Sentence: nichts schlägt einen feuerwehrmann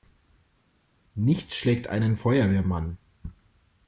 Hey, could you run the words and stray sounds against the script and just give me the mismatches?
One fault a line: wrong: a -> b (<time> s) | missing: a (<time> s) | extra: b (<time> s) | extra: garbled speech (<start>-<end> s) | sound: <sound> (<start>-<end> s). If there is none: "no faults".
no faults